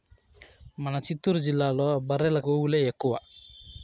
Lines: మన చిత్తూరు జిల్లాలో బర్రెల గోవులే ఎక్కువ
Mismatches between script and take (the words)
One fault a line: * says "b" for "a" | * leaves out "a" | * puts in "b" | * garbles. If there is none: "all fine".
all fine